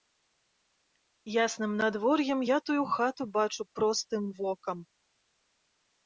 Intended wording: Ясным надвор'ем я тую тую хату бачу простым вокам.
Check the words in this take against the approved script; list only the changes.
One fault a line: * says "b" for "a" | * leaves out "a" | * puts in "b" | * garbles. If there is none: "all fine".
* leaves out "тую"